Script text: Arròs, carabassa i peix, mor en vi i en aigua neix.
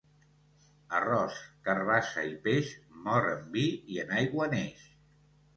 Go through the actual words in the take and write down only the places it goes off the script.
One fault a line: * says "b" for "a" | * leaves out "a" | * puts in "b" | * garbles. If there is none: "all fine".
all fine